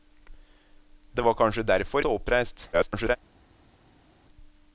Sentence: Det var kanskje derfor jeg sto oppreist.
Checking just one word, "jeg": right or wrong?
wrong